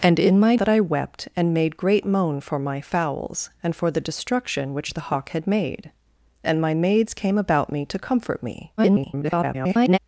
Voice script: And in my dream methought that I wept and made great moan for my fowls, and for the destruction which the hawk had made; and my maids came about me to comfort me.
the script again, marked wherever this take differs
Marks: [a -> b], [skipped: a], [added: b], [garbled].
And in my [skipped: dream methought] that I wept and made great moan for my fowls, and for the destruction which the hawk had made; and my maids came about me to comfort me. [garbled]